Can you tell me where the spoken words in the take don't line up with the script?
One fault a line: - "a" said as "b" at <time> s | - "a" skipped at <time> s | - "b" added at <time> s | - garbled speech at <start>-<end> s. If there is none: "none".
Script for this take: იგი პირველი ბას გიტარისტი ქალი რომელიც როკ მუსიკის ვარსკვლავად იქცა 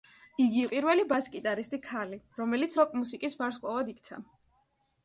none